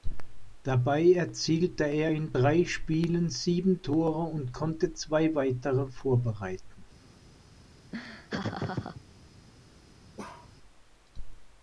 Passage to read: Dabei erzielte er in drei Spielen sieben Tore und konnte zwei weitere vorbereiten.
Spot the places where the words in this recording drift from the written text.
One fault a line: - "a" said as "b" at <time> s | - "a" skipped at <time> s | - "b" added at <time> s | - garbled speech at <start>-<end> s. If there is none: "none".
none